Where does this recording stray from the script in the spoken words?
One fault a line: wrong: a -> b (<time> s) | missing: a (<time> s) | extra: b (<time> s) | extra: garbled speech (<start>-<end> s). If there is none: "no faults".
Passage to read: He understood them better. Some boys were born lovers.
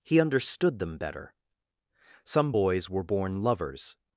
no faults